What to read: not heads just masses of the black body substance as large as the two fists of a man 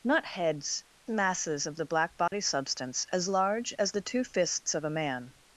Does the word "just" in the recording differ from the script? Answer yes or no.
yes